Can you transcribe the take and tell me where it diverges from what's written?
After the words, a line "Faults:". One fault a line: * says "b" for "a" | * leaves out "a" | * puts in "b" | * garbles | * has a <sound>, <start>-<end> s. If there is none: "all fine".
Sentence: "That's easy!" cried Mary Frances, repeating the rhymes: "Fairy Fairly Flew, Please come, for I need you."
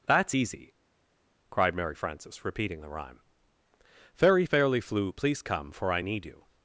"That's easy!" cried Mary Frances, repeating the rhyme: "Fairy Fairly Flew, Please come, for I need you."
Faults:
* says "rhyme" for "rhymes"